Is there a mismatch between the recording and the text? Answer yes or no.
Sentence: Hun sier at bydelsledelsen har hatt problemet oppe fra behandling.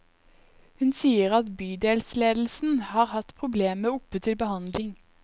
yes